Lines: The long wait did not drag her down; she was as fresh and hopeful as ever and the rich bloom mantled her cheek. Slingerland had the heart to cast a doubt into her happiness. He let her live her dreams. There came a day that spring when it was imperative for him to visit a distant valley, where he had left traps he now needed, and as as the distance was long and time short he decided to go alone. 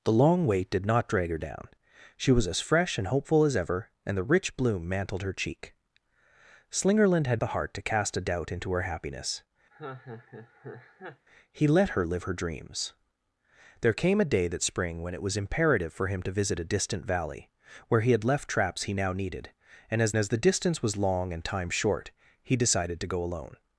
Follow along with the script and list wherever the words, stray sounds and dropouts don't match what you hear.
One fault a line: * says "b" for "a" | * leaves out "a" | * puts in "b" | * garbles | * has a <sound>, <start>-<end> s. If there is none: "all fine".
* has a laugh, 9.7-11.3 s